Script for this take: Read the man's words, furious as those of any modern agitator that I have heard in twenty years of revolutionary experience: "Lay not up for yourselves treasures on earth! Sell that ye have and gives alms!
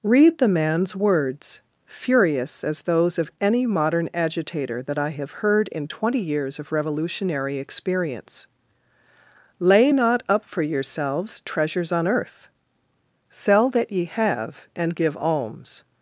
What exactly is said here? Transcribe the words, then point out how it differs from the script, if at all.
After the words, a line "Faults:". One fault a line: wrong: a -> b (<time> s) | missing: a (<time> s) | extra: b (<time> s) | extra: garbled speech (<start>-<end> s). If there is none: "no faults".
Read the man's words, furious as those of any modern agitator that I have heard in twenty years of revolutionary experience: "Lay not up for yourselves treasures on earth! Sell that ye have and give alms!
Faults:
wrong: gives -> give (14.9 s)